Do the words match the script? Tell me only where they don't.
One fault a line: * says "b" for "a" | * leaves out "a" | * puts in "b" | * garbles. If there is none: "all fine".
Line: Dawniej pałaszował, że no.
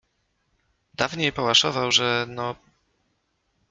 all fine